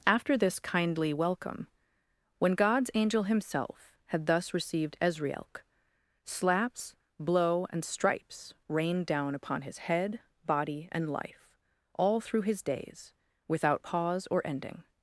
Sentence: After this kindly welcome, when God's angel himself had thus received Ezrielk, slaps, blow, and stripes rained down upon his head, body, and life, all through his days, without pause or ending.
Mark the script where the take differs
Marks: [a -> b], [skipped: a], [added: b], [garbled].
After this kindly welcome, when God's angel himself had thus received Ezrielk, slaps, blow, and stripes rained down upon his head, body, and life, all through his days, without pause or ending.